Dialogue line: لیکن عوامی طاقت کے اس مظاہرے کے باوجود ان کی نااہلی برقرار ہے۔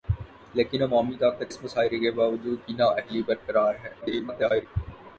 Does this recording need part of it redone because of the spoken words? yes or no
yes